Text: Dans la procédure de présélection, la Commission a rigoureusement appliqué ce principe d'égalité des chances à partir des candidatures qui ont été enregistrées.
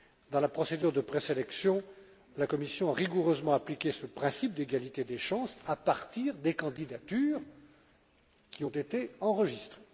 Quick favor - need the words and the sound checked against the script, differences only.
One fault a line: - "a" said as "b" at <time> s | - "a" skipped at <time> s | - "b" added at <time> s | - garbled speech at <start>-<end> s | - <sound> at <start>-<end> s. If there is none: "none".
none